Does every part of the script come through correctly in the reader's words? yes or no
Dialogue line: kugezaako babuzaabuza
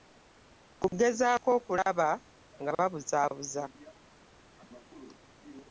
no